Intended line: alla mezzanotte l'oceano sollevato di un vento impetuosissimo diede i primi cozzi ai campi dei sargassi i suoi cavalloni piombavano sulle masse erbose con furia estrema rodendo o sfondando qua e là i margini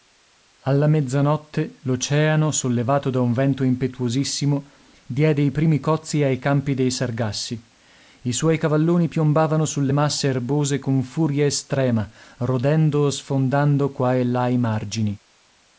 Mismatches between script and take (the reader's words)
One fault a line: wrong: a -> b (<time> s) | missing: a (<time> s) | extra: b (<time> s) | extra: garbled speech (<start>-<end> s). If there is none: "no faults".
wrong: di -> da (3.1 s)